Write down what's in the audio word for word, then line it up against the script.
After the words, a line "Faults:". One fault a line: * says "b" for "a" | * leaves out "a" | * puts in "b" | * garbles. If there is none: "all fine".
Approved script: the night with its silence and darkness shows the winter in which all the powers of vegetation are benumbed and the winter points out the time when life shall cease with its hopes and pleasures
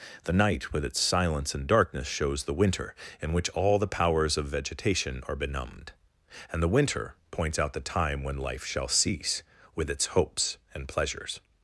the night with its silence and darkness shows the winter in which all the powers of vegetation are benumbed and the winter points out the time when life shall cease with its hopes and pleasures
Faults:
all fine